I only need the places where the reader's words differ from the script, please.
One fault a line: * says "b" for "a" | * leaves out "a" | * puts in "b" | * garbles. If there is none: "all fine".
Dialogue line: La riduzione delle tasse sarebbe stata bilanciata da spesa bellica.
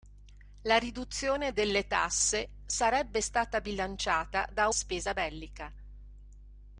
all fine